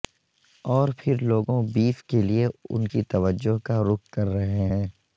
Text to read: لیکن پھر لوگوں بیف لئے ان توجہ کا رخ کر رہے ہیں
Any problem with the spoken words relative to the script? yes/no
yes